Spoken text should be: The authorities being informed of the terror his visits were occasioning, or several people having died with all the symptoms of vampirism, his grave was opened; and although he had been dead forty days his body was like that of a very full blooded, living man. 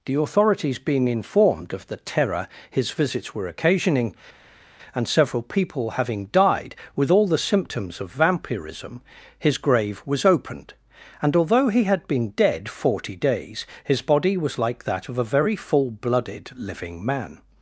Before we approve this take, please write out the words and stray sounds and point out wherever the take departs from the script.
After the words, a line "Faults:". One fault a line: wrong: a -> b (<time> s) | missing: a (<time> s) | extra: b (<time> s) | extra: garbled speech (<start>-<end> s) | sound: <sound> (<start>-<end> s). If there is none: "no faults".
The authorities being informed of the terror his visits were occasioning, and several people having died with all the symptoms of vampirism, his grave was opened; and although he had been dead forty days his body was like that of a very full blooded, living man.
Faults:
wrong: or -> and (5.0 s)